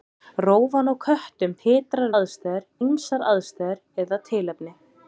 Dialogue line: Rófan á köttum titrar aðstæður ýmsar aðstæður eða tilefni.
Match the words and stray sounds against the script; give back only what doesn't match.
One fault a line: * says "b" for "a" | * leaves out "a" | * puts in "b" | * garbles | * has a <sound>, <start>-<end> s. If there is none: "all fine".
all fine